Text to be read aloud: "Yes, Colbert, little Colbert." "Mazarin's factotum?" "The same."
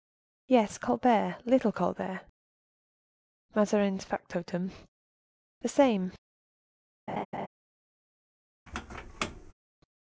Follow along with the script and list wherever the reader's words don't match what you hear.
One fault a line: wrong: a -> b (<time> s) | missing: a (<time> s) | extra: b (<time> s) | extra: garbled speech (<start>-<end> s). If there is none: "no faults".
no faults